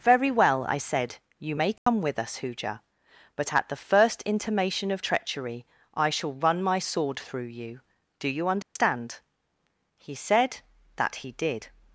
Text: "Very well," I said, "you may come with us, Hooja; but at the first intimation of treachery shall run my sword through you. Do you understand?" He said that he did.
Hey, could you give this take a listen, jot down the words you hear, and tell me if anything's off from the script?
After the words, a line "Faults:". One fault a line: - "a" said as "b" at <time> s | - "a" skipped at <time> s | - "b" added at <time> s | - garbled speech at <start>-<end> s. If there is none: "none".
"Very well," I said, "you may come with us, Hooja; but at the first intimation of treachery I shall run my sword through you. Do you understand?" He said that he did.
Faults:
- "I" added at 5.9 s